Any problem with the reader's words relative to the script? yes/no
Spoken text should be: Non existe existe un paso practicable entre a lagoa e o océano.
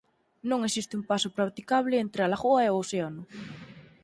yes